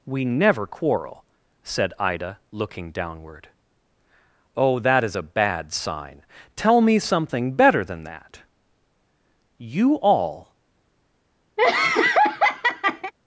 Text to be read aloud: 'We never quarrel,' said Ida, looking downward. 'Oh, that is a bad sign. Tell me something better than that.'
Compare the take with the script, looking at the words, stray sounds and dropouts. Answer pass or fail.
fail